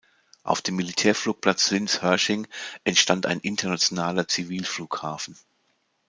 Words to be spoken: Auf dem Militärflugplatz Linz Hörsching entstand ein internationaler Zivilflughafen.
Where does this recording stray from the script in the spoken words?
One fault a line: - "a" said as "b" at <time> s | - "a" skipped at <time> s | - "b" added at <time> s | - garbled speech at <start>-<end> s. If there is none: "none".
none